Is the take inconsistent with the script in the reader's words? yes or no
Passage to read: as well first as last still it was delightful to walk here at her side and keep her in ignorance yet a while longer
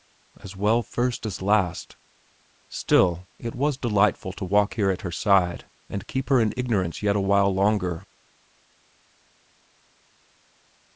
no